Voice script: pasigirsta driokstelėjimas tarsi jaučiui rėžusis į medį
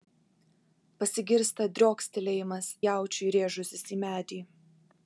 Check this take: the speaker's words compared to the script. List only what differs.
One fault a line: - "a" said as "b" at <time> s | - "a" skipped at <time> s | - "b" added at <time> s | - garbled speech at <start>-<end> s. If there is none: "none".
- "tarsi" skipped at 2.7 s